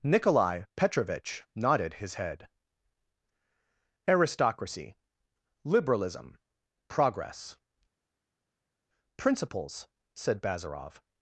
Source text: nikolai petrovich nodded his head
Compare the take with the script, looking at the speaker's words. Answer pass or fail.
fail